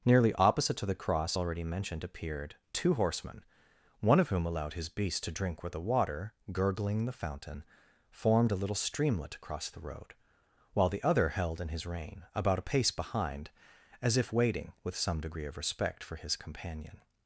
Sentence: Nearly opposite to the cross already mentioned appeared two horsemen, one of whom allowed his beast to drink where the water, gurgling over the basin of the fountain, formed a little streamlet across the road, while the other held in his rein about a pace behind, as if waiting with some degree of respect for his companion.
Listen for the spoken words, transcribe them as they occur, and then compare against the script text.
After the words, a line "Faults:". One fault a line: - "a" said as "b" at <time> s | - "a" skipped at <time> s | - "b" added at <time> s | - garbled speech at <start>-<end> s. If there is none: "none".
Nearly opposite to the cross already mentioned appeared two horsemen, one of whom allowed his beast to drink where the water, gurgling the fountain, formed a little streamlet across the road, while the other held in his rein about a pace behind, as if waiting with some degree of respect for his companion.
Faults:
- "over the basin of" skipped at 7.1 s